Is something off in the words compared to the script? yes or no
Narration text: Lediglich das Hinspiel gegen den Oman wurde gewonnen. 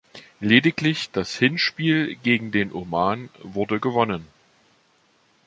no